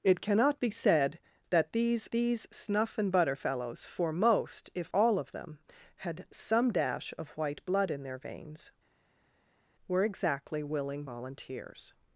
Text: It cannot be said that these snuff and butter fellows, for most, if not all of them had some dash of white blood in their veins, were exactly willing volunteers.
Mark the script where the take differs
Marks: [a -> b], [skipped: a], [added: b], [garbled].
It cannot be said that these [added: these] snuff and butter fellows, for most, if [skipped: not] all of them had some dash of white blood in their veins, were exactly willing volunteers.